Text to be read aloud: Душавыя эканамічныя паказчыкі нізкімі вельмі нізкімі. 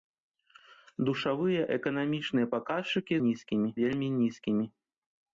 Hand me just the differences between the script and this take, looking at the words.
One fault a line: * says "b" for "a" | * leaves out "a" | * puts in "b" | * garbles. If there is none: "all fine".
all fine